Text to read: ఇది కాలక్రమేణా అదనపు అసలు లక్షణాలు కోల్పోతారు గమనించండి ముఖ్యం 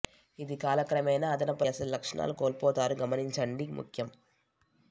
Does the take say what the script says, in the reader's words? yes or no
yes